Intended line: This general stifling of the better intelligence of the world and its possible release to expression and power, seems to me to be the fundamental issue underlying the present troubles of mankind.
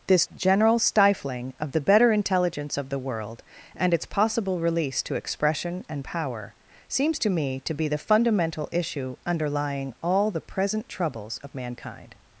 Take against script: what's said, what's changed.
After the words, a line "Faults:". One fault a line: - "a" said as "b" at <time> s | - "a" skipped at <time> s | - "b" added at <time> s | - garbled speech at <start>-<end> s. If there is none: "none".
This general stifling of the better intelligence of the world and its possible release to expression and power, seems to me to be the fundamental issue underlying all the present troubles of mankind.
Faults:
- "all" added at 10.0 s